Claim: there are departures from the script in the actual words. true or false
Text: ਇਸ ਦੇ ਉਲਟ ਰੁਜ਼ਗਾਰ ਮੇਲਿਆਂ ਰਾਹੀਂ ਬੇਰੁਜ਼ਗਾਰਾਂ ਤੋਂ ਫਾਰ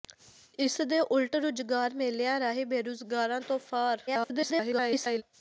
true